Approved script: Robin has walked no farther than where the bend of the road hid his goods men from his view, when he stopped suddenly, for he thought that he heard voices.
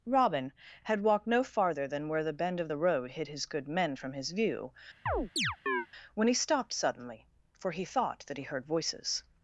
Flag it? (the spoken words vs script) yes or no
yes